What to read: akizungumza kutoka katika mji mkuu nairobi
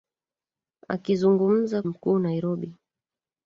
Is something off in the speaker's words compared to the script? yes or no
yes